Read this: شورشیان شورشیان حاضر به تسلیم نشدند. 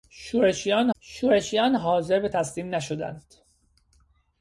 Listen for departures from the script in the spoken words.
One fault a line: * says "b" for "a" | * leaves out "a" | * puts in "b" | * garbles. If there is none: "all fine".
all fine